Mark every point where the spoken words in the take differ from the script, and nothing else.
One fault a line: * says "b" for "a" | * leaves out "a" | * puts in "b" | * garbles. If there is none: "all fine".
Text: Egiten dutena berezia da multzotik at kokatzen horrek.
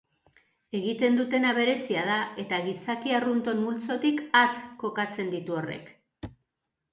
* puts in "eta gizaki arrunton"
* puts in "ditu"